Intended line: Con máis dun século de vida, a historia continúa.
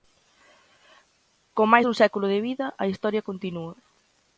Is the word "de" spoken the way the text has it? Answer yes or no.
yes